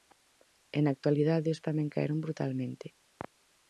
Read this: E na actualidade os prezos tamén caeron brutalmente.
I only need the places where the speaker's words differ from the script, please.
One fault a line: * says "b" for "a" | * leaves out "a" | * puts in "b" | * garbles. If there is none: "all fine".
* leaves out "prezos"